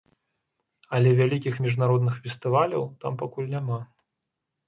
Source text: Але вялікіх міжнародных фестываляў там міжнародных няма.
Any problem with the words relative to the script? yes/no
yes